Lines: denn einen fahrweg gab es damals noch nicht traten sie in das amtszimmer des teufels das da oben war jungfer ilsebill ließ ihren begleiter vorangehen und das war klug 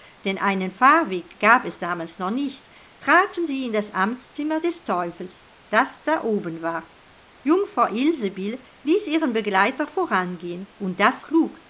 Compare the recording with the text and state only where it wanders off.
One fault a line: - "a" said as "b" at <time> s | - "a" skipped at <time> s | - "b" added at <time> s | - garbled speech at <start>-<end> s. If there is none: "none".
- "war" skipped at 11.2 s